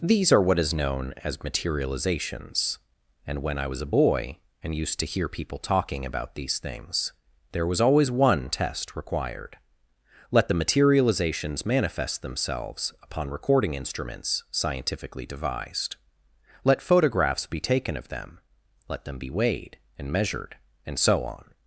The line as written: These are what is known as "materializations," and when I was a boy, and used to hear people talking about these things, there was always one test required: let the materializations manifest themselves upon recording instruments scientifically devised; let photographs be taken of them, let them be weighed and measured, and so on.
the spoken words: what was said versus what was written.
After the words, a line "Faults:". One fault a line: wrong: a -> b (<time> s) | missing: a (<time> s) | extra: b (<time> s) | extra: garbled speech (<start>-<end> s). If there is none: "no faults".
These are what is known as "materializations," and when I was a boy, and used to hear people talking about these things, there was always one test required: let the materializations manifest themselves upon recording instruments scientifically devised; let photographs be taken of them, let them be weighed and measured, and so on.
Faults:
no faults